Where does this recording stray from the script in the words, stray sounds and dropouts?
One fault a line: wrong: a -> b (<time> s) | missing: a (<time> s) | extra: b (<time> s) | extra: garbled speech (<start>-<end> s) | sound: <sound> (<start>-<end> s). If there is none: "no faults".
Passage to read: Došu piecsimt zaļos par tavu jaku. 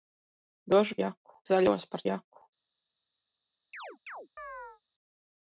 wrong: piecsimt -> jaku (1.0 s)
missing: tavu (2.0 s)
sound: chirp (3.7-4.8 s)